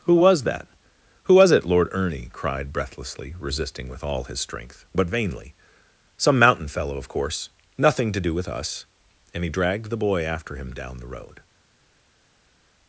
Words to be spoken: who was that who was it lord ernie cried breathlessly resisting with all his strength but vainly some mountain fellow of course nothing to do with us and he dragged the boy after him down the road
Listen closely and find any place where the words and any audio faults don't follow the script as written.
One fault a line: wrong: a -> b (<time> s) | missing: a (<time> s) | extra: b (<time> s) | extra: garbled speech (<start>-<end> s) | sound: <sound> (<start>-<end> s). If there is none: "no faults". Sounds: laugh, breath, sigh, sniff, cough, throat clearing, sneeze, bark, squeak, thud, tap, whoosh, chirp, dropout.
no faults